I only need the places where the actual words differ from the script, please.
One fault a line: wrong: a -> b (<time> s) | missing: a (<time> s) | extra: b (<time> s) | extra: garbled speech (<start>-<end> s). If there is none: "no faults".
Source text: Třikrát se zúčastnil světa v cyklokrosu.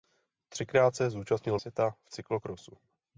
no faults